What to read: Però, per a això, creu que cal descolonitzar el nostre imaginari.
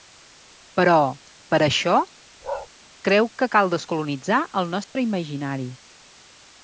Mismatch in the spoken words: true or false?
false